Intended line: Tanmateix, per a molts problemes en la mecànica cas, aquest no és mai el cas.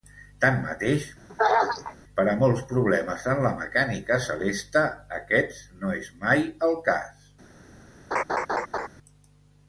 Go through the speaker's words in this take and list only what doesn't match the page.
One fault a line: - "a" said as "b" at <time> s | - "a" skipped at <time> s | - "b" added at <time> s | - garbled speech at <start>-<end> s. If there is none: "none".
- "cas" said as "celeste" at 4.3 s